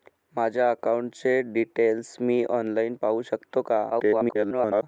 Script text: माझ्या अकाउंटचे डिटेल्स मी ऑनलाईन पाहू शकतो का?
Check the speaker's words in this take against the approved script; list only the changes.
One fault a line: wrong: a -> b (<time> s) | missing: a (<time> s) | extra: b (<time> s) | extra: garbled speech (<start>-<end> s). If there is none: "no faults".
extra: garbled speech (3.9-4.8 s)